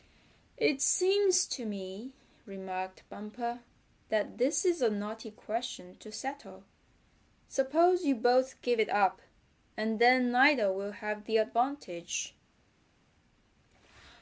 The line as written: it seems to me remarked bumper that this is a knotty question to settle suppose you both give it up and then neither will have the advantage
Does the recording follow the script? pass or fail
pass